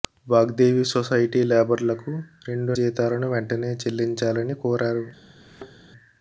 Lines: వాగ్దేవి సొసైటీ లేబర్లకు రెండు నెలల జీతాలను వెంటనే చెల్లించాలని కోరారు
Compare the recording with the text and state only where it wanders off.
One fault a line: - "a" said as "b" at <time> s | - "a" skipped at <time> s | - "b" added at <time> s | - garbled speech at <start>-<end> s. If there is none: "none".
- "నెలల" skipped at 2.8 s